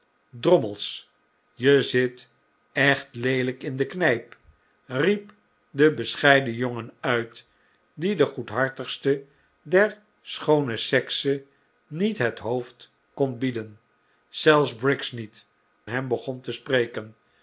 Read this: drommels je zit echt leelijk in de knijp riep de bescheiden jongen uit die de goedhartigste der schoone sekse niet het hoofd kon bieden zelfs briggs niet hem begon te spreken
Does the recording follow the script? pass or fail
pass